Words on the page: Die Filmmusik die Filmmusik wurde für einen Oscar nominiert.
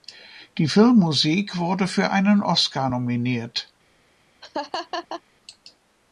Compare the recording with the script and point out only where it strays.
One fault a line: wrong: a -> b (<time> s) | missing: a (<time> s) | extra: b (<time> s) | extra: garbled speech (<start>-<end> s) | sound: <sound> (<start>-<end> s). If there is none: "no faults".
missing: die Filmmusik (1.6 s)
sound: laugh (4.4-5.2 s)